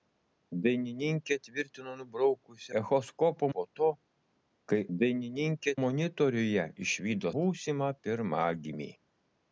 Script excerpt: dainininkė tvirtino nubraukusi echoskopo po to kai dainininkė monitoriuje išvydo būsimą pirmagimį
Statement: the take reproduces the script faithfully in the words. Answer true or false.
true